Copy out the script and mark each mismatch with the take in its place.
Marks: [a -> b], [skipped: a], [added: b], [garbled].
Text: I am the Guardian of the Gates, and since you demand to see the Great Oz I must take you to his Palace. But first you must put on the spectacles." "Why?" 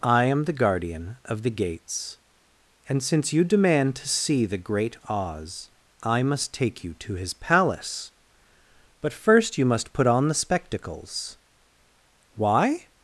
I am the Guardian of the Gates, and since you demand to see the Great Oz I must take you to his Palace. But first you must put on the spectacles." "Why?"